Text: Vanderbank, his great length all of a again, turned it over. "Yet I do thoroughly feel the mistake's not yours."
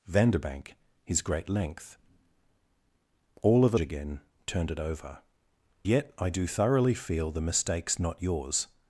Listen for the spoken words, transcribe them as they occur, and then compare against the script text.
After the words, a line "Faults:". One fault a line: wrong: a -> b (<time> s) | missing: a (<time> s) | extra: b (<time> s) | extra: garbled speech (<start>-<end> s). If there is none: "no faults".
Vanderbank, his great length all of a again, turned it over. "Yet I do thoroughly feel the mistake's not yours."
Faults:
no faults